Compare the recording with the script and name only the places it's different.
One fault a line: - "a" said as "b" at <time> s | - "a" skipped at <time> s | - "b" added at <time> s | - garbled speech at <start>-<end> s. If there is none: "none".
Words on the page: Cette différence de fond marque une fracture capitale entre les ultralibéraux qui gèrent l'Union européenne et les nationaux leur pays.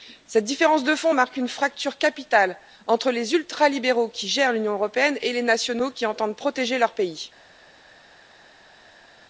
- "qui entendent protéger" added at 5.9 s